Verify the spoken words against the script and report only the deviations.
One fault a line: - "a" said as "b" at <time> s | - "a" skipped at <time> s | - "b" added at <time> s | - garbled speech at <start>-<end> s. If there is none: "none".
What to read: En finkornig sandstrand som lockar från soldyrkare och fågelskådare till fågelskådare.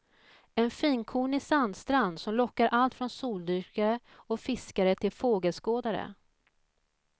- "allt" added at 2.7 s
- "fågelskådare" said as "fiskare" at 4.4 s